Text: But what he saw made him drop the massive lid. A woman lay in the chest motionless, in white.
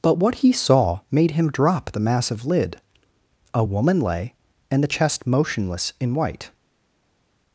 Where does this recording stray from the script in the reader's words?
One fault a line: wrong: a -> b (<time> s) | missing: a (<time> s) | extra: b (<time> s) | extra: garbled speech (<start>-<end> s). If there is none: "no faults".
wrong: in -> and (4.7 s)